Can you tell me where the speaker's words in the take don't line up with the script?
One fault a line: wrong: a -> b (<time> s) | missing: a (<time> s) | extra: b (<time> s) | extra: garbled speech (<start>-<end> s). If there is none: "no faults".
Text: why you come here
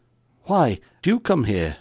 no faults